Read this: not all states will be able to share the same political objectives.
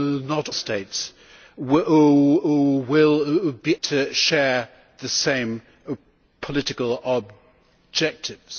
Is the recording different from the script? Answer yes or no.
yes